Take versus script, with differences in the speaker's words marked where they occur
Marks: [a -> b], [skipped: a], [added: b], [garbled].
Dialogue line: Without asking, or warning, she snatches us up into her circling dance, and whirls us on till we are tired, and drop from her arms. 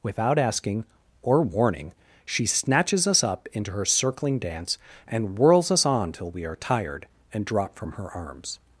Without asking, or warning, she snatches us up into her circling dance, and whirls us on till we are tired, and drop from her arms.